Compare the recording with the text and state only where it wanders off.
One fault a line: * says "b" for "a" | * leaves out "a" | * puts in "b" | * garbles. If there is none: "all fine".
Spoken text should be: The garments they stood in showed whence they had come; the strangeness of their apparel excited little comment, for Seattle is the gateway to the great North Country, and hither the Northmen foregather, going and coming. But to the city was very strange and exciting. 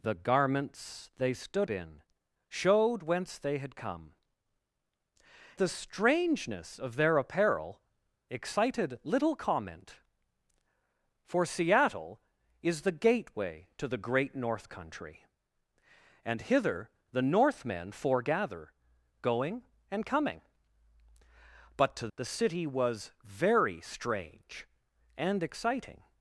all fine